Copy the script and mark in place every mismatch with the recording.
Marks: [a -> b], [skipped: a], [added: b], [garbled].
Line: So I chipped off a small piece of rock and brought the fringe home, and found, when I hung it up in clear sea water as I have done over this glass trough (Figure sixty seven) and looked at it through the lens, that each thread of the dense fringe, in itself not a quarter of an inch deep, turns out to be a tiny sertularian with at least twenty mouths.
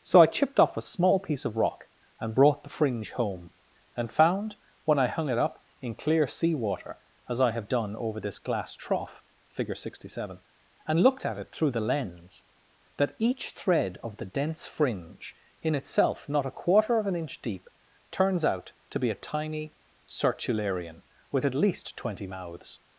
So I chipped off a small piece of rock and brought the fringe home, and found, when I hung it up in clear sea water as I have done over this glass trough (Figure sixty seven) and looked at it through the lens, that each thread of the dense fringe, in itself not a quarter of an inch deep, turns out to be a tiny sertularian with at least twenty mouths.